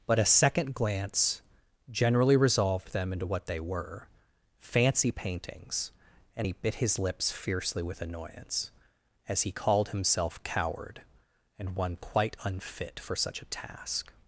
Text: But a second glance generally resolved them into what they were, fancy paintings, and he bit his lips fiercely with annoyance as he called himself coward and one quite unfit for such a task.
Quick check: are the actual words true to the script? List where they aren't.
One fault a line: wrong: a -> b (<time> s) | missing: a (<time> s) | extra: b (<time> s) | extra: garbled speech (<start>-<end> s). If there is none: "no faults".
no faults